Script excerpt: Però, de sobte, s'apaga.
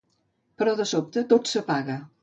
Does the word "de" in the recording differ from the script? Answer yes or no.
no